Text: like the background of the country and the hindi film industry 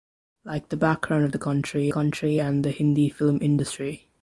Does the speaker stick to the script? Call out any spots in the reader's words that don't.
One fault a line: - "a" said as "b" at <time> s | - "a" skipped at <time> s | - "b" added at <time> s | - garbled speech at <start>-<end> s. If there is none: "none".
- "country" added at 1.9 s